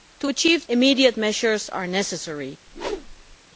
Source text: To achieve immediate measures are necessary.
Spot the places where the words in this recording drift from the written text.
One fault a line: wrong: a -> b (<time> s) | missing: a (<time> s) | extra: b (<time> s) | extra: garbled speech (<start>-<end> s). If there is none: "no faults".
no faults